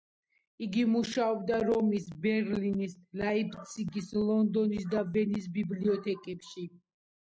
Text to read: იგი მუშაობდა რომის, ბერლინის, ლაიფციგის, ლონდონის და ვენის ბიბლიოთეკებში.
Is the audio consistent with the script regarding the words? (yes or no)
yes